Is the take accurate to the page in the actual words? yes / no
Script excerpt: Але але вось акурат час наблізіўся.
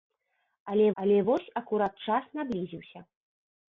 yes